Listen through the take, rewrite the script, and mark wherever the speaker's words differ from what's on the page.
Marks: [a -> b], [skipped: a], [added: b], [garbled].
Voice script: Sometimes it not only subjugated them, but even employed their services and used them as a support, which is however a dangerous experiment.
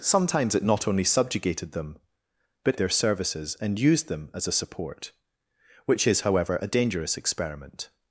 Sometimes it not only subjugated them, but [skipped: even employed] their services and used them as a support, which is however a dangerous experiment.